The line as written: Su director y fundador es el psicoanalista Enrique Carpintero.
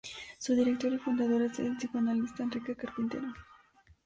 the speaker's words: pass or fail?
pass